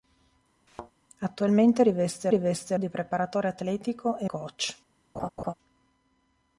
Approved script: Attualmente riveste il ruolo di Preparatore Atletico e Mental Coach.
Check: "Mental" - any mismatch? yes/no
yes